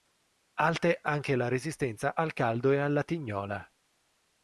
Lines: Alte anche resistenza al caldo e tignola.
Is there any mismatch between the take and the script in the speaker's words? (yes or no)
yes